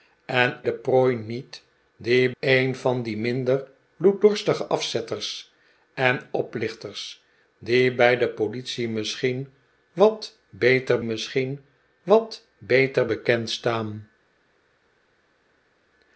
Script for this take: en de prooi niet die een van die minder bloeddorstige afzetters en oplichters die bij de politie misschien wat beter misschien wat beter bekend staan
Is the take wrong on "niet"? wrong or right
right